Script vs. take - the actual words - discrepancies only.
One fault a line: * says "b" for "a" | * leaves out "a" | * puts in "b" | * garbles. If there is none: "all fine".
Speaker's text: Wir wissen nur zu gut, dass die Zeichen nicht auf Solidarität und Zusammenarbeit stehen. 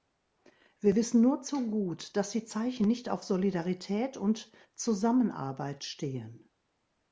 all fine